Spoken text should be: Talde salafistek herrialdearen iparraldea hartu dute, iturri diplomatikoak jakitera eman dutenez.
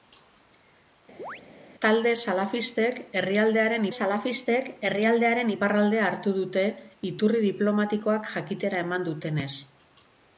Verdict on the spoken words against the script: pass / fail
fail